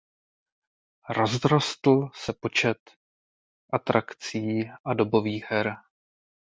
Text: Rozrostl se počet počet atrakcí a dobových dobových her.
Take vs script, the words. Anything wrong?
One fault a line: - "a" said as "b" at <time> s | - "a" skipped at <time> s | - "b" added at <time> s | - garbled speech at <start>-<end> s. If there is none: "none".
- "počet" skipped at 2.8 s
- "dobových" skipped at 5.4 s